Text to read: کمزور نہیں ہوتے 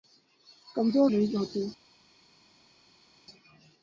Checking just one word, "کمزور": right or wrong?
right